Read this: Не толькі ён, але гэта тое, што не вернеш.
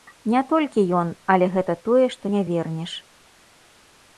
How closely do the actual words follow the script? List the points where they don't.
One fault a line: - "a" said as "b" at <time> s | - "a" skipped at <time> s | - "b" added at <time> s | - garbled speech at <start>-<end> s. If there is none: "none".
none